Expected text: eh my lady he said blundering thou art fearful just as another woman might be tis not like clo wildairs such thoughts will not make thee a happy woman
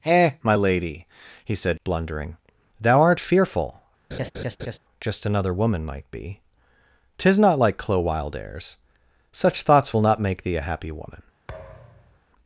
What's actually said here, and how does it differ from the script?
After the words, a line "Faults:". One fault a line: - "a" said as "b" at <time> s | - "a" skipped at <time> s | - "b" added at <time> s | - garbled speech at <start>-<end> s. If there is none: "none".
eh my lady he said blundering thou art fearful just another woman might be tis not like clo wildairs such thoughts will not make thee a happy woman
Faults:
- "as" skipped at 5.3 s